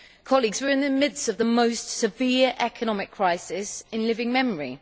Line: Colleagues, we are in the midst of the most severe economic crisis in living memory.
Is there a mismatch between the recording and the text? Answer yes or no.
no